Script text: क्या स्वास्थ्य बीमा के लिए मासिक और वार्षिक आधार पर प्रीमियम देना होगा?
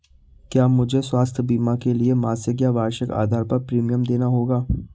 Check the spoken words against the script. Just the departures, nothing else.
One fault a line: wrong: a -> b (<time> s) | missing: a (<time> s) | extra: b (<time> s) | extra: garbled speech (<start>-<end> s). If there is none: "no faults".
extra: मुझे (0.7 s)
wrong: और -> या (2.6 s)